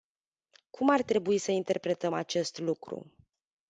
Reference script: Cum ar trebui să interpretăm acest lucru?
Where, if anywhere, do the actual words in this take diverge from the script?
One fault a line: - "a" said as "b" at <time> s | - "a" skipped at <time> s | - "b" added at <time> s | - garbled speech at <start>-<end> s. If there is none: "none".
none